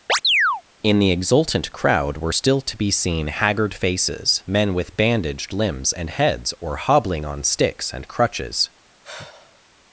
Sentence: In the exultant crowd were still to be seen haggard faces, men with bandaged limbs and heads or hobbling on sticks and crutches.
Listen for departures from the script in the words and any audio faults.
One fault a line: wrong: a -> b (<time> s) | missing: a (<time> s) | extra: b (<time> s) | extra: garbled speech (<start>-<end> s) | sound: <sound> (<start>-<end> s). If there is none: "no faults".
sound: chirp (0.1-0.6 s)
sound: sigh (9.0-9.6 s)